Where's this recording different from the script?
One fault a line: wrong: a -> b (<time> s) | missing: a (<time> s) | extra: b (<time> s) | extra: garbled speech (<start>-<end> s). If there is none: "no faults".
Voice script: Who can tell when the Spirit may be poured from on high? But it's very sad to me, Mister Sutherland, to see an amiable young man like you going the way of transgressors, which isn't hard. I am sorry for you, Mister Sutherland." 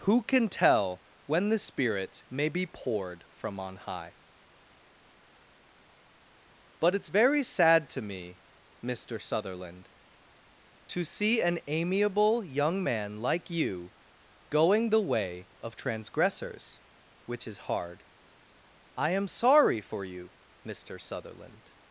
wrong: isn't -> is (17.5 s)